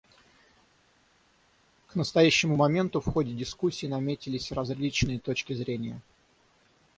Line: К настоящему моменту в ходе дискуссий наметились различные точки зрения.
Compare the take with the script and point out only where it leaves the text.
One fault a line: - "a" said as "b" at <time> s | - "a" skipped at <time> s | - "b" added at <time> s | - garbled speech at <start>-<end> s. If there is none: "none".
none